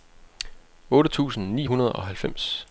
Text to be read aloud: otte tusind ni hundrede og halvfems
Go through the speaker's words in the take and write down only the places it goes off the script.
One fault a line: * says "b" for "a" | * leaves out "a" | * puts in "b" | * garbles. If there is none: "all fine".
all fine